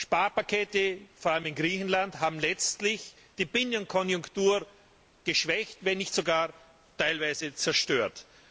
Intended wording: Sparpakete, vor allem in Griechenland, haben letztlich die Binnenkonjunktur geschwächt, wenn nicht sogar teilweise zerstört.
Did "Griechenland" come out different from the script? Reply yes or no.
no